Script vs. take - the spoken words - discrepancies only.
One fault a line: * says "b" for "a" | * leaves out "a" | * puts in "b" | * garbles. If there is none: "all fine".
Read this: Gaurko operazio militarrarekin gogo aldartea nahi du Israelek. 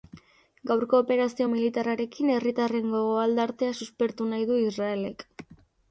* puts in "herritarren"
* puts in "suspertu"